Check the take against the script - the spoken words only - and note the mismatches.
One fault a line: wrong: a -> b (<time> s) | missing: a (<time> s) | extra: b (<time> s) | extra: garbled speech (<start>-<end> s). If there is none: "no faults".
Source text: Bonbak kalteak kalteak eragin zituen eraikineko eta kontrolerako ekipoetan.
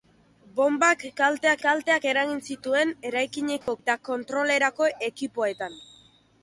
no faults